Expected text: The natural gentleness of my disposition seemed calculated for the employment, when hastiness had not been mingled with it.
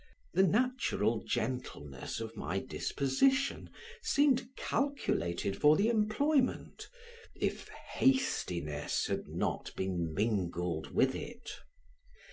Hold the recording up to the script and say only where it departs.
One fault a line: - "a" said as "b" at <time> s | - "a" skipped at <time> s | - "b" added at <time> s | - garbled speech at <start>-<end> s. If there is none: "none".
- "when" said as "if" at 7.3 s